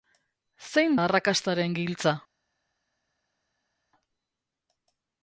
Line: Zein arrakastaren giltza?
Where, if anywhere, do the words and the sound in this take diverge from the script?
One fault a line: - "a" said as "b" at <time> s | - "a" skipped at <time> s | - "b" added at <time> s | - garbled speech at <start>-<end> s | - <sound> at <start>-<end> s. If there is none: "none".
none